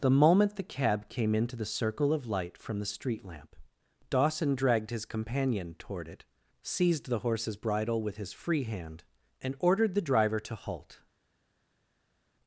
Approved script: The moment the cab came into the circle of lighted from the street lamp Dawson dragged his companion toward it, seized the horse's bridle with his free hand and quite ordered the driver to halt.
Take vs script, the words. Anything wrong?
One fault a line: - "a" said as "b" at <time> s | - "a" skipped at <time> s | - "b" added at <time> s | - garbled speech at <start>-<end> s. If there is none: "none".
- "lighted" said as "light" at 2.2 s
- "quite" skipped at 9.6 s